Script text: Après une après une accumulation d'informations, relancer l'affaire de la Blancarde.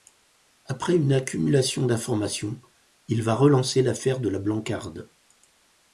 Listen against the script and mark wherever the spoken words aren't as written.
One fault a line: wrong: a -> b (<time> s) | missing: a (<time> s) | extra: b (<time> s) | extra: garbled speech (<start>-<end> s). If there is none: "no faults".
wrong: après une accumulation d'informations -> accumulation d'informations il va (1.1 s)